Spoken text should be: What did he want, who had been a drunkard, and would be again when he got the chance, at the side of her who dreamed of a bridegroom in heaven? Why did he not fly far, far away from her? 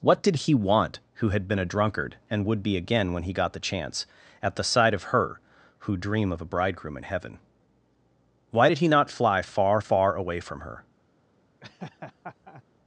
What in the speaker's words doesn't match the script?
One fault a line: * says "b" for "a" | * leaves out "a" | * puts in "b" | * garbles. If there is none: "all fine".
* says "dream" for "dreamed"